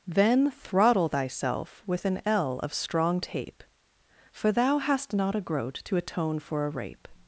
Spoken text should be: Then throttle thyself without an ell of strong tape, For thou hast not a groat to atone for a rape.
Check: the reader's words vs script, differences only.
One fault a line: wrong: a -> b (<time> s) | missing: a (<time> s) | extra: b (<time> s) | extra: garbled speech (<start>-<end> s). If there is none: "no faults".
wrong: without -> with (1.9 s)